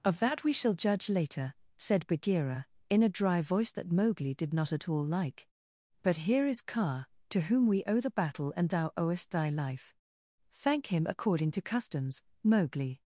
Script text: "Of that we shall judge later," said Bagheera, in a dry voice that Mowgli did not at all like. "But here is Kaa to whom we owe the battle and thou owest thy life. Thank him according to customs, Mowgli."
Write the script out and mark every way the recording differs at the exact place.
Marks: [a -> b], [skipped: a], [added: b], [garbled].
"Of that we shall judge later," said Bagheera, in a dry voice that Mowgli did not at all like. "But here is Kaa to whom we owe the battle and thou owest thy life. Thank him according to customs, Mowgli."